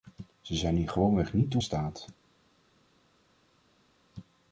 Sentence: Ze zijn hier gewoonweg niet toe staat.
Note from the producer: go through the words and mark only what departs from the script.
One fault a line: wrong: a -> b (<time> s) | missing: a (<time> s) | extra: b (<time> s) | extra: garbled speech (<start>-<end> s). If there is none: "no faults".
no faults